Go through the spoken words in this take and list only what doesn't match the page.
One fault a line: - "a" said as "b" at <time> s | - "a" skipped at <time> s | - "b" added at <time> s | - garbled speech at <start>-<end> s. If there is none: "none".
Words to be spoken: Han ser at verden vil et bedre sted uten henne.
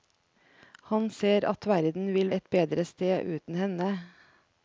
none